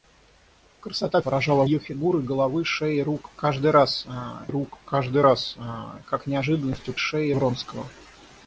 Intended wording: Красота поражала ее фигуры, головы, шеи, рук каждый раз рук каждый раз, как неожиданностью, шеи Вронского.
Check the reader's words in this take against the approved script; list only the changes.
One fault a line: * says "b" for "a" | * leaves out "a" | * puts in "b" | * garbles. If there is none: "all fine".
all fine